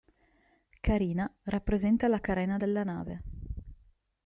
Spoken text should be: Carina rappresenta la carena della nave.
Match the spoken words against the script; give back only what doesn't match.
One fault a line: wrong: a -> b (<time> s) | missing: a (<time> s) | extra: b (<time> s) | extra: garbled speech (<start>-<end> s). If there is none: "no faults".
no faults